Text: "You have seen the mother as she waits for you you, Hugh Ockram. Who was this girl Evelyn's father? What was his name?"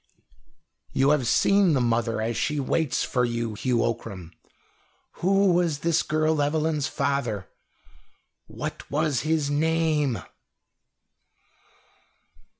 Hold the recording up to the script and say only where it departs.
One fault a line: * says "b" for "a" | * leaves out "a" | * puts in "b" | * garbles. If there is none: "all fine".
* leaves out "you"